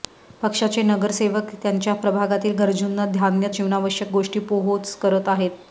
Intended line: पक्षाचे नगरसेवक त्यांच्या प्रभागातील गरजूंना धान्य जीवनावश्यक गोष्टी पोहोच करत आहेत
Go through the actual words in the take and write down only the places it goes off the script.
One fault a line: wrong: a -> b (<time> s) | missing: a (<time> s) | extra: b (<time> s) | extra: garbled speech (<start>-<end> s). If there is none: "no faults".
no faults